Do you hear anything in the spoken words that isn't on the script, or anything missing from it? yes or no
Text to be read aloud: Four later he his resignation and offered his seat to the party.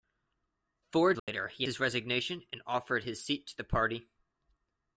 no